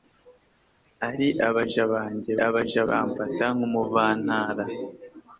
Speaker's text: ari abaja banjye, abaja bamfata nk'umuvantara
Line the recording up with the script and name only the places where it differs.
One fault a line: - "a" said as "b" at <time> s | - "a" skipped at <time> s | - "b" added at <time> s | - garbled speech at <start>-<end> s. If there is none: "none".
none